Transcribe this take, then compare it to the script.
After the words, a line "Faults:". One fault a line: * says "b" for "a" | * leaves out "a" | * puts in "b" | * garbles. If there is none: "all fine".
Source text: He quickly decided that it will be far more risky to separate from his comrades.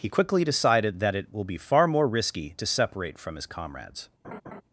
He quickly decided that it will be far more risky to separate from his comrades.
Faults:
all fine